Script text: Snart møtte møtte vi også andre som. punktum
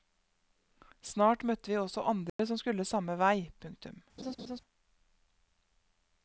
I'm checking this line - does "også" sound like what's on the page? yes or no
yes